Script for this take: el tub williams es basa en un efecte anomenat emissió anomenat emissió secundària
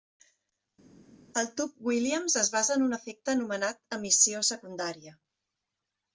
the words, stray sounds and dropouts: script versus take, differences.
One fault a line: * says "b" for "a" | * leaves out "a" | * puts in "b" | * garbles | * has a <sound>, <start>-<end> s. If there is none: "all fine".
* leaves out "anomenat emissió"